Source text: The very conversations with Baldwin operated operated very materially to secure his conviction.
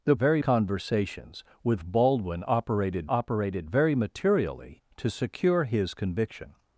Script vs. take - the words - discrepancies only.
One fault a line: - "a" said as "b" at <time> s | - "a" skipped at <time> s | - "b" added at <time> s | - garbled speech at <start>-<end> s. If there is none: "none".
none